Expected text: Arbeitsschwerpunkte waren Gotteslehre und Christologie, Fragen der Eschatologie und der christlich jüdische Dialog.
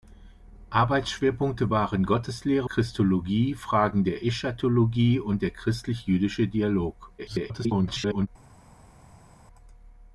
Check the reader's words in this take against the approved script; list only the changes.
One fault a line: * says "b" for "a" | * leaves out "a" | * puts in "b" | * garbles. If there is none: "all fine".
* leaves out "und"
* garbles